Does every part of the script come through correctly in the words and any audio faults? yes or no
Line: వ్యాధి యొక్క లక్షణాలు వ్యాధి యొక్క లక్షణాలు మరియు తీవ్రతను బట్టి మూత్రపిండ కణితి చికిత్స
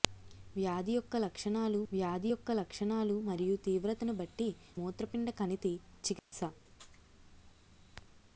no